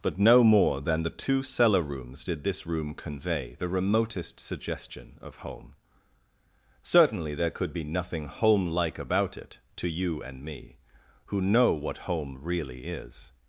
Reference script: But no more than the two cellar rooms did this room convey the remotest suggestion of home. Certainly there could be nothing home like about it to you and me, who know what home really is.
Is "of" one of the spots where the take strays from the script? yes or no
no